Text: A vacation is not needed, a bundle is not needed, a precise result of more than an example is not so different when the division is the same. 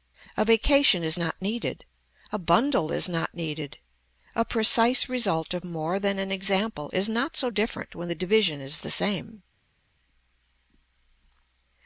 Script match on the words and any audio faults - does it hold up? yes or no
yes